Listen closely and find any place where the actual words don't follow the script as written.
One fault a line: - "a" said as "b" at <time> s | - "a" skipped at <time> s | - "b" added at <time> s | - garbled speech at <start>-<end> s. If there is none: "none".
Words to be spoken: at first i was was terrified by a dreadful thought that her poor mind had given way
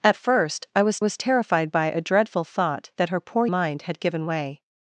none